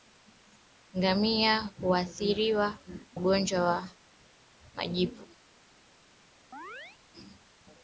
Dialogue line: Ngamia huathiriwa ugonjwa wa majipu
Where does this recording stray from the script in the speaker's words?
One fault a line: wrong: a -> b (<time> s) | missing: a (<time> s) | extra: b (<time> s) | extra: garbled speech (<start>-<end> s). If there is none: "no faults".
no faults